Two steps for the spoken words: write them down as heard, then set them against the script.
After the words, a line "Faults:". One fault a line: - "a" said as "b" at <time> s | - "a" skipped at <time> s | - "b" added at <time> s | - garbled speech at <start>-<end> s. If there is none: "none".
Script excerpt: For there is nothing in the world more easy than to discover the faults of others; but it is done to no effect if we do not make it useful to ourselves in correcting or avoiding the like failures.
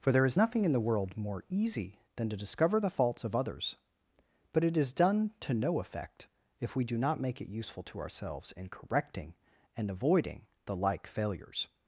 For there is nothing in the world more easy than to discover the faults of others; but it is done to no effect if we do not make it useful to ourselves in correcting and avoiding the like failures.
Faults:
- "or" said as "and" at 9.8 s